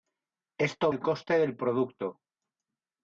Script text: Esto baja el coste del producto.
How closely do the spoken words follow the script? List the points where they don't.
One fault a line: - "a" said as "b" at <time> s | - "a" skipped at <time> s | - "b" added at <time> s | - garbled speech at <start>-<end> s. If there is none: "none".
- "baja" skipped at 0.9 s